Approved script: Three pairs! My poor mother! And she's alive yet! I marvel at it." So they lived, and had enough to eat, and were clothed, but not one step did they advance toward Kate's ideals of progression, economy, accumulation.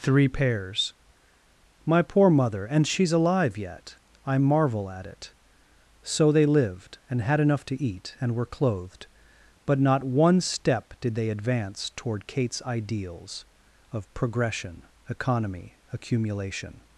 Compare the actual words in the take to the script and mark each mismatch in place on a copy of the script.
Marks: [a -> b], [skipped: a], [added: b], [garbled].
Three pairs! My poor mother! And she's alive yet! I marvel at it." So they lived, and had enough to eat, and were clothed, but not one step did they advance toward Kate's ideals of progression, economy, accumulation.